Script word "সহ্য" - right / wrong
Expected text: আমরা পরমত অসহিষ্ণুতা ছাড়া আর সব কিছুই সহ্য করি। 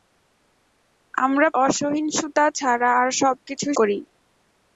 wrong